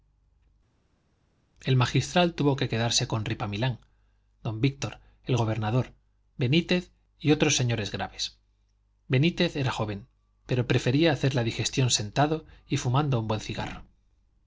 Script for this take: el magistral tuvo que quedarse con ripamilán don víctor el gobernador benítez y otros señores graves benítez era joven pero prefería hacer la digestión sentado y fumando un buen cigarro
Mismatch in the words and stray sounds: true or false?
false